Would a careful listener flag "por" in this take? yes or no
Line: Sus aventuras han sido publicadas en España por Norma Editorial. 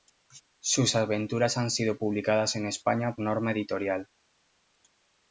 yes